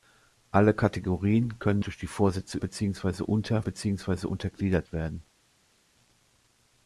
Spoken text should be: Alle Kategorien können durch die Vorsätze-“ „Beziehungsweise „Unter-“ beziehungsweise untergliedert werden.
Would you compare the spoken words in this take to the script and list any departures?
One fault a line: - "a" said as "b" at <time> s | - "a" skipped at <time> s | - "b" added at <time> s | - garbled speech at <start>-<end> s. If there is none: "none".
none